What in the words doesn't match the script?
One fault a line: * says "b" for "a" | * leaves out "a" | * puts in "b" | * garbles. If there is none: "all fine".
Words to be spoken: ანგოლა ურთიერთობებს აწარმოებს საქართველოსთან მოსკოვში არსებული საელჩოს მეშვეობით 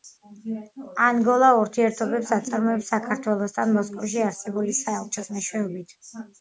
all fine